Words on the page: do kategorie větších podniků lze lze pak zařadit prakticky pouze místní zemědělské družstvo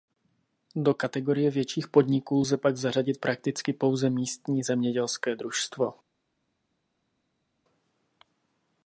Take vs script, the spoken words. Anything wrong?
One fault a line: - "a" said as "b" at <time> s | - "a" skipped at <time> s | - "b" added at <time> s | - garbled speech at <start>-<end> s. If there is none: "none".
- "lze" skipped at 2.6 s